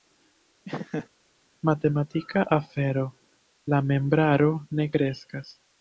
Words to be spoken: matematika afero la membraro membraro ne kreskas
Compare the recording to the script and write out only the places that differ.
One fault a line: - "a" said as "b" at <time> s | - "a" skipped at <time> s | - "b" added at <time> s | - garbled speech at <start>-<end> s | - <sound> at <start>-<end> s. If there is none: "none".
- laugh at 0.7-1.1 s
- "membraro" skipped at 4.5 s